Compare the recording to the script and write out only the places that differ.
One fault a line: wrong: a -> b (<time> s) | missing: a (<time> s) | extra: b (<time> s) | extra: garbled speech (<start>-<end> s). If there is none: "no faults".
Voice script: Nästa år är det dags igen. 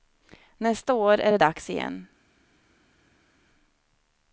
no faults